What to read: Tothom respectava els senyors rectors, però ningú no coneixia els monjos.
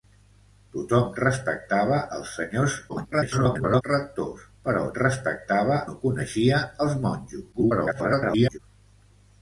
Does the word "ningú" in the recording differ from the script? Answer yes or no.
yes